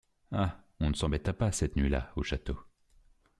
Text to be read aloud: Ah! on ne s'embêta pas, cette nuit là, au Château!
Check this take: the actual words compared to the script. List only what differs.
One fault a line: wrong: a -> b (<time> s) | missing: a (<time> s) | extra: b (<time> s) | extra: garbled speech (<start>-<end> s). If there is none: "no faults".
no faults